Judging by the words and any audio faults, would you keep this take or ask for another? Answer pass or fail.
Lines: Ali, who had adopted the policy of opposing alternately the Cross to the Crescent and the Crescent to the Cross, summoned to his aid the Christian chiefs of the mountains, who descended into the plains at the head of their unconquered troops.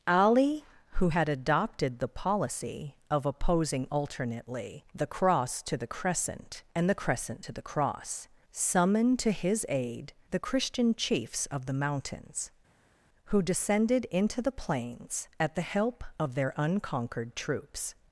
fail